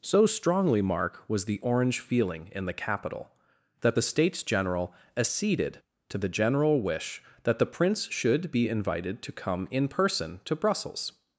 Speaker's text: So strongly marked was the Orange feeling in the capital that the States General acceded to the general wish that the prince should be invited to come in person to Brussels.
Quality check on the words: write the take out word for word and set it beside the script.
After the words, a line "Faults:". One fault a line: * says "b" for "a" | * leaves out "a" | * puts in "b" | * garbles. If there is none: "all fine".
So strongly mark was the Orange feeling in the capital that the States General acceded to the general wish that the prince should be invited to come in person to Brussels.
Faults:
* says "mark" for "marked"